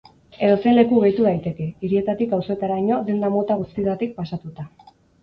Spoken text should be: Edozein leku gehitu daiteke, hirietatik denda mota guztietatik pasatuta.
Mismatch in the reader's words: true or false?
true